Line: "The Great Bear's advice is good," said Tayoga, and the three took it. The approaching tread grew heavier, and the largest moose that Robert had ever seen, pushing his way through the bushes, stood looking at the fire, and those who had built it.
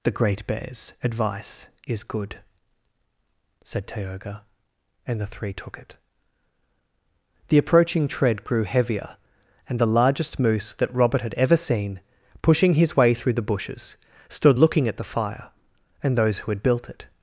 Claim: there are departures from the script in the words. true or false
false